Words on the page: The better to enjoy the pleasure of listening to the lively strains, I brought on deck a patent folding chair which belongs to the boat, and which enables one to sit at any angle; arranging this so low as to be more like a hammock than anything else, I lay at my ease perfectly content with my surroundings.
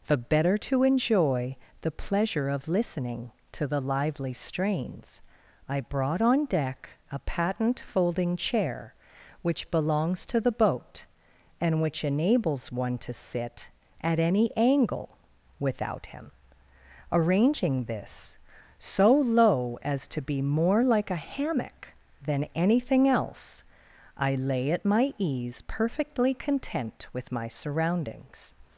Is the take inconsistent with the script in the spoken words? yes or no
yes